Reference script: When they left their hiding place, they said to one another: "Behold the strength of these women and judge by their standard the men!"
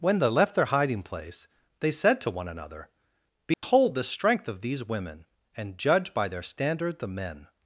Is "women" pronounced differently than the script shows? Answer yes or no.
no